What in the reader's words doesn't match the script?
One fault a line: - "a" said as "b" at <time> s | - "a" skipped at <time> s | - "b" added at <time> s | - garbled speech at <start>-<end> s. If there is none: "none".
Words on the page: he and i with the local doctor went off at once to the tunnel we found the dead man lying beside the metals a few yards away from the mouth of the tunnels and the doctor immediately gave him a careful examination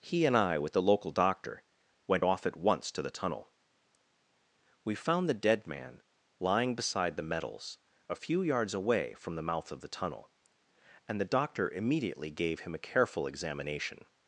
- "tunnels" said as "tunnel" at 9.9 s